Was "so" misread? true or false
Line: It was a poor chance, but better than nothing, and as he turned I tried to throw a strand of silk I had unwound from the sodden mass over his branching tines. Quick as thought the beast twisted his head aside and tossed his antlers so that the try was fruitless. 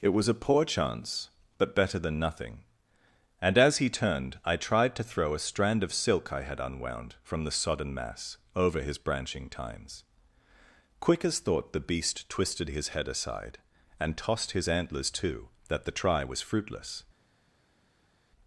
true